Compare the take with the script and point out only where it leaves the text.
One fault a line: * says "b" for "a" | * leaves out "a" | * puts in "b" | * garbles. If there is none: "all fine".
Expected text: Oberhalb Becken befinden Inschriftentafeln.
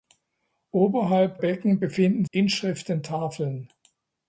all fine